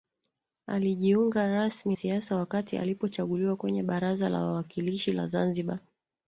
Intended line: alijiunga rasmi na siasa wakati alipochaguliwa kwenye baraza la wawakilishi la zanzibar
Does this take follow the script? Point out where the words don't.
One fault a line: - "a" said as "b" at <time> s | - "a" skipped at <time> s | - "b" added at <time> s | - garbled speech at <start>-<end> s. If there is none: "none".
- "na" skipped at 1.9 s